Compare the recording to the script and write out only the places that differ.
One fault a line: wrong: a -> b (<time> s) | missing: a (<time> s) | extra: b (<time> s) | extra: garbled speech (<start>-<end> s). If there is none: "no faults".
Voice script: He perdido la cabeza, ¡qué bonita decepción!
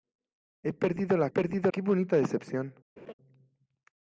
wrong: cabeza -> perdido (1.3 s)